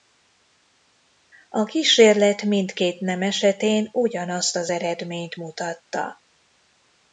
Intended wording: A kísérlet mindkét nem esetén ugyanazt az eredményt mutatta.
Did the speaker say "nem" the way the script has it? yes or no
yes